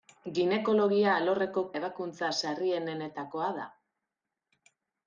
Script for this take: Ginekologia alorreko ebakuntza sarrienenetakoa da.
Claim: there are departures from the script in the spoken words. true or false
false